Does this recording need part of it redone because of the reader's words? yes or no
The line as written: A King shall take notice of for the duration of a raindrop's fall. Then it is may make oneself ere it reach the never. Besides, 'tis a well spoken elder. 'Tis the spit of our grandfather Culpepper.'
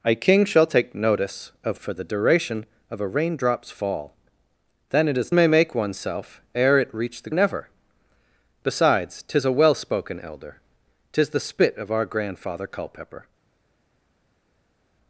no